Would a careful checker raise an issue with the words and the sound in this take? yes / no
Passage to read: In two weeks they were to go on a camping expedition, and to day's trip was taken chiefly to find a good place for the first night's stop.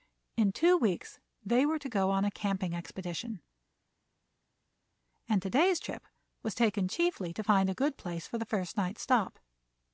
no